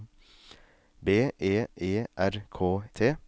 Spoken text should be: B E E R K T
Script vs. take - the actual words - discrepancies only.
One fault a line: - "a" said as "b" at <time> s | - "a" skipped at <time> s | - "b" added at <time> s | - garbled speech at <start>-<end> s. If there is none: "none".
none